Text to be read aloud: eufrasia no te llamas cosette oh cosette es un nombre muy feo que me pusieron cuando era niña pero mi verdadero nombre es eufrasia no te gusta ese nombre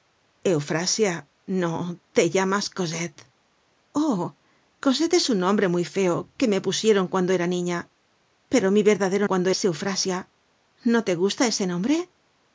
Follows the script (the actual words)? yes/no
no